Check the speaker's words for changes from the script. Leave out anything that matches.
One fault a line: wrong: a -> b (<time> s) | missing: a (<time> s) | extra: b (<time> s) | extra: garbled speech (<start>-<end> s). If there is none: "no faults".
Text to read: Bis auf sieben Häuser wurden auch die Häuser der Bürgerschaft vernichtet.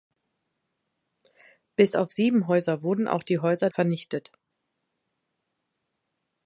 missing: der Bürgerschaft (3.7 s)